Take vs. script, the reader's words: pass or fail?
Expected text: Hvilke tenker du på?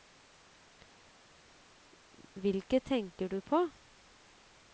pass